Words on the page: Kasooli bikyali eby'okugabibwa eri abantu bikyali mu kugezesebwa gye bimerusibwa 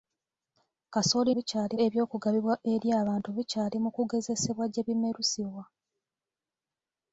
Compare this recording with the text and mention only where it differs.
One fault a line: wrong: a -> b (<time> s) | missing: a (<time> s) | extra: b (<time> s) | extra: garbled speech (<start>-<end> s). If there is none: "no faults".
no faults